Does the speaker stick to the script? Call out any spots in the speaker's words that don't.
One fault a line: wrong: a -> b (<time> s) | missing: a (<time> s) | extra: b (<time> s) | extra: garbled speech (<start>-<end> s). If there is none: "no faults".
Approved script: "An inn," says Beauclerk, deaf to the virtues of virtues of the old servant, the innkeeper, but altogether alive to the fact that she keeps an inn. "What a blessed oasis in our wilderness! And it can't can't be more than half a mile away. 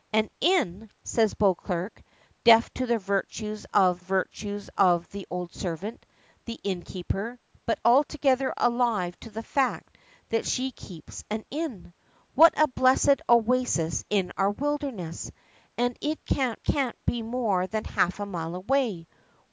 no faults